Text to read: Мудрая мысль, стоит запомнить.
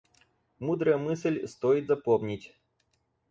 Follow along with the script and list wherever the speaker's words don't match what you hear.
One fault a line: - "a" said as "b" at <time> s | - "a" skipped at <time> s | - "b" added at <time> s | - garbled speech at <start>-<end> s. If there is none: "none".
none